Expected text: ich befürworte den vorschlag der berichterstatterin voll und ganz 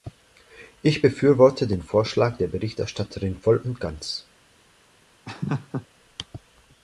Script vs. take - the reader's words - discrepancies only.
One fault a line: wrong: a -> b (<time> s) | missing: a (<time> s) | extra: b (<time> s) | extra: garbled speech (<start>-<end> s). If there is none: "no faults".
no faults